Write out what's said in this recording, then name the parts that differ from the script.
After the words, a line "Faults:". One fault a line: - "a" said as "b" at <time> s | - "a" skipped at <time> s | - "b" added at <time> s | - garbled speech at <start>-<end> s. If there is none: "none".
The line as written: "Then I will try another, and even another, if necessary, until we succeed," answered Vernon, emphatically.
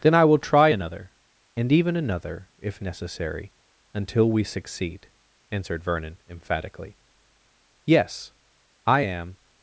"Then I will try another, and even another, if necessary, until we succeed," answered Vernon, emphatically. "Yes: I am
Faults:
- "Yes I am" added at 7.9 s